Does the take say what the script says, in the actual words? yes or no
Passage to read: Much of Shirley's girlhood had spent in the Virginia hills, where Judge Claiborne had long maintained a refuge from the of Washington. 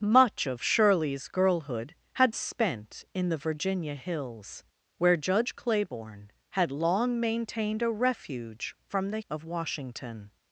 yes